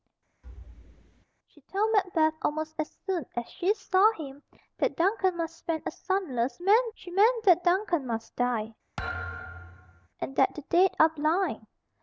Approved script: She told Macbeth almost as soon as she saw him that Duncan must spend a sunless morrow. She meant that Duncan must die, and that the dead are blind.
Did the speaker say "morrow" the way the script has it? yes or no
no